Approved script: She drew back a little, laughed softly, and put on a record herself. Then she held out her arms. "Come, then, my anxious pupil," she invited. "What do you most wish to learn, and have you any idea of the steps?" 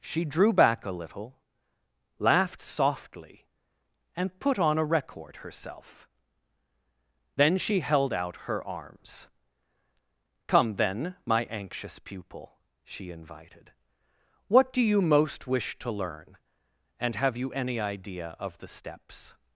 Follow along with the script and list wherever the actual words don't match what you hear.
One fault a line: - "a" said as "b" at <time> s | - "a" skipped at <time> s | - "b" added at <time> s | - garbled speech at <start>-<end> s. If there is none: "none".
none